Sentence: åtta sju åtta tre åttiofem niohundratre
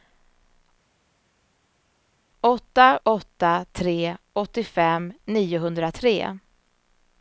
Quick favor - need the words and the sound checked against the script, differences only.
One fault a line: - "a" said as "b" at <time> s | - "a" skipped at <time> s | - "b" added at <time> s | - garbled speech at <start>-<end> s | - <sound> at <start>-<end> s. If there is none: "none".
- "sju" skipped at 3.0 s